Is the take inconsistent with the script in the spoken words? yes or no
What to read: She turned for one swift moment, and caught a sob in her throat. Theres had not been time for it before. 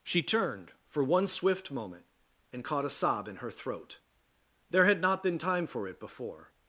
yes